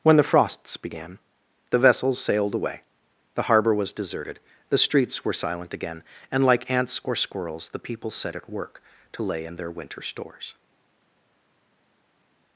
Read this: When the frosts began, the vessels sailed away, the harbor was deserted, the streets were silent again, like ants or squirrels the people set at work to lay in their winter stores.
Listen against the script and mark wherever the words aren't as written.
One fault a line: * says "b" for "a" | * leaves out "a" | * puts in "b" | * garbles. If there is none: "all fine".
* puts in "and"